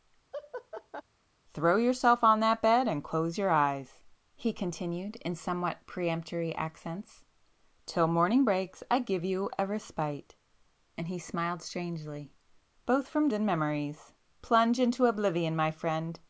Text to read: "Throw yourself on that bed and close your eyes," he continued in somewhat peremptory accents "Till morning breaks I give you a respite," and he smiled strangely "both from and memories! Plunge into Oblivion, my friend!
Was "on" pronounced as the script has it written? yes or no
yes